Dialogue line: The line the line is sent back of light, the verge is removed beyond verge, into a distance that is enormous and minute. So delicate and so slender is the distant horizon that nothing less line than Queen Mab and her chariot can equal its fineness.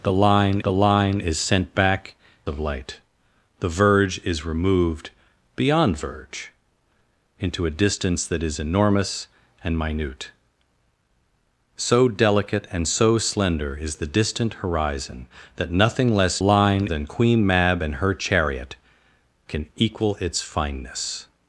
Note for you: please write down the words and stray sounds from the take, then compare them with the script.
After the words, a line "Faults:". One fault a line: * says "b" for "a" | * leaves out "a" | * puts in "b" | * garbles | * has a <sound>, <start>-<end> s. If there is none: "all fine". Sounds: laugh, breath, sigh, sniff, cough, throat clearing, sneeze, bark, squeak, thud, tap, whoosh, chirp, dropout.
The line the line is sent back of light, the verge is removed beyond verge, into a distance that is enormous and minute. So delicate and so slender is the distant horizon that nothing less line than Queen Mab and her chariot can equal its fineness.
Faults:
all fine